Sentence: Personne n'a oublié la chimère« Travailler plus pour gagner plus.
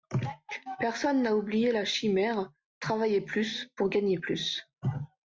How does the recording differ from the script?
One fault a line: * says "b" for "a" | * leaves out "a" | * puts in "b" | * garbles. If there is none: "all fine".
all fine